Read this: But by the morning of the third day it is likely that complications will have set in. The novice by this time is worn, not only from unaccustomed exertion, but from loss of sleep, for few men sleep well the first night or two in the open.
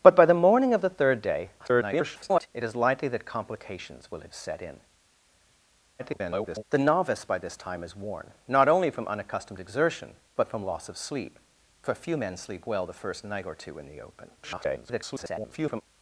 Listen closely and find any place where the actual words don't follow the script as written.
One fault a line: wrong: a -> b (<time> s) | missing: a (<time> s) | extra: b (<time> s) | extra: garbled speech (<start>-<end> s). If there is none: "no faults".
extra: garbled speech (1.6-2.5 s)
extra: garbled speech (6.0-6.6 s)
extra: garbled speech (14.4-15.8 s)